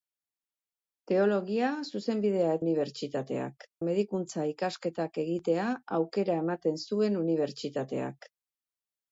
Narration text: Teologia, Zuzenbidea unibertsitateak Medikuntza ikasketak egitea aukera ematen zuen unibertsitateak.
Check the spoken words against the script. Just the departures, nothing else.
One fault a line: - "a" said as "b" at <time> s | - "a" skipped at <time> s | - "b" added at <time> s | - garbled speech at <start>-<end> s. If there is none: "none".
none